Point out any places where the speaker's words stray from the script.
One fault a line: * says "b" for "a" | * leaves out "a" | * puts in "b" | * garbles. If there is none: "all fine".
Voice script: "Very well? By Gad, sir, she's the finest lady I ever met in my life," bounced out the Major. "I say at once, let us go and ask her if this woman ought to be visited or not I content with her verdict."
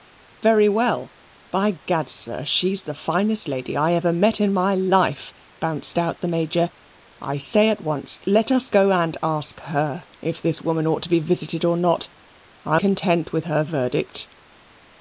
all fine